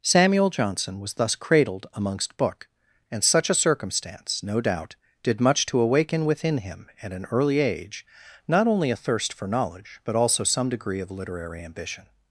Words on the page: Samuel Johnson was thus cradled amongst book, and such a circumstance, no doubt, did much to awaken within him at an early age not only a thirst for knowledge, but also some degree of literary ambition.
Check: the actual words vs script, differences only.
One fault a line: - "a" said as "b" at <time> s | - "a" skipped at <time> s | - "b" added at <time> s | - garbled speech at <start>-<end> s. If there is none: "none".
none